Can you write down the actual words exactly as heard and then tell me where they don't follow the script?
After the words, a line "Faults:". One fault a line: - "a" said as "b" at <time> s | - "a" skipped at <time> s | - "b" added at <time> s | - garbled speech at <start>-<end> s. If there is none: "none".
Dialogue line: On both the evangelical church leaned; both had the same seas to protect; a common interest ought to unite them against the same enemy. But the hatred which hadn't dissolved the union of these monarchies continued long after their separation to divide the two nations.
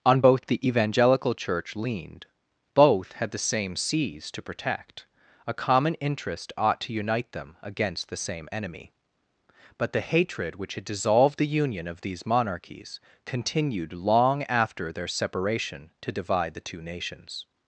On both the evangelical church leaned; both had the same seas to protect; a common interest ought to unite them against the same enemy. But the hatred which had dissolved the union of these monarchies continued long after their separation to divide the two nations.
Faults:
- "hadn't" said as "had" at 10.7 s